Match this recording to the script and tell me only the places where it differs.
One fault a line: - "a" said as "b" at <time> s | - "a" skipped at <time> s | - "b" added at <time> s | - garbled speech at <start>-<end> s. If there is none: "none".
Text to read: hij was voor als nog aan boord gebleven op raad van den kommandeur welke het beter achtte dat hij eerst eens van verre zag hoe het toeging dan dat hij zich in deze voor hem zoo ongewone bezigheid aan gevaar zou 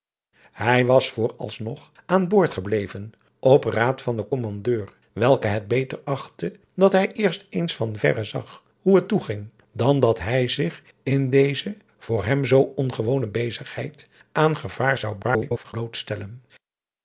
- garbled speech at 15.2-15.7 s